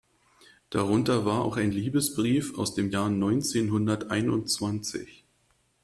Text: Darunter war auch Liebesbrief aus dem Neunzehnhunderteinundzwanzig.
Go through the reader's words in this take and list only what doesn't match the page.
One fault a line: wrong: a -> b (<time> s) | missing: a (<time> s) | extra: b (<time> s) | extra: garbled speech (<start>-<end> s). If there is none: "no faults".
extra: ein (1.6 s)
extra: Jahr (2.9 s)